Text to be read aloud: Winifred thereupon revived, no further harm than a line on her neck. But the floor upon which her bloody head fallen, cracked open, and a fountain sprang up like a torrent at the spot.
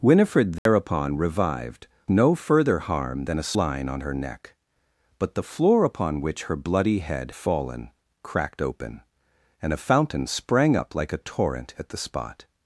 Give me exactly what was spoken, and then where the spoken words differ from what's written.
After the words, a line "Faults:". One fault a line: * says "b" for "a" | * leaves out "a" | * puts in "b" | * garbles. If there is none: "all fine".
Winifred thereupon revived, no further harm than a line on her neck. But the floor upon which her bloody head fallen, cracked open, and a fountain sprang up like a torrent at the spot.
Faults:
all fine